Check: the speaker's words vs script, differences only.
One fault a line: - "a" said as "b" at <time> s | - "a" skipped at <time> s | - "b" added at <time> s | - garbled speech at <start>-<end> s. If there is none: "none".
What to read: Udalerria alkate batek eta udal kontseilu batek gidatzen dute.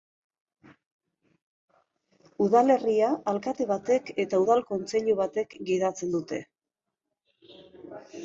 none